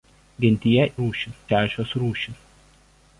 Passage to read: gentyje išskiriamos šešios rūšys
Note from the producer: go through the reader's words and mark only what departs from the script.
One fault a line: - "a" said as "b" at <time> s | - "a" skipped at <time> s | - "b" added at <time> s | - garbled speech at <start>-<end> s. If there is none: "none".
- "išskiriamos" said as "rūšys" at 1.0 s